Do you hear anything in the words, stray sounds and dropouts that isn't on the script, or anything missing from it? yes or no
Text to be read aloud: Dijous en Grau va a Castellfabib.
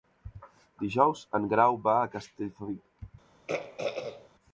yes